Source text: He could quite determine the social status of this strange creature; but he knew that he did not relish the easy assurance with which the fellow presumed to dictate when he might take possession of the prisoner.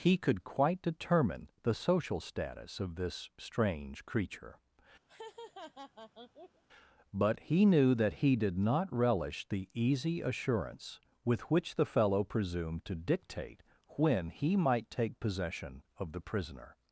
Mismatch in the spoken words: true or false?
false